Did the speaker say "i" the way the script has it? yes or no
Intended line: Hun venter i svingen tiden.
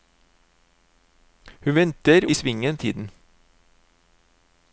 yes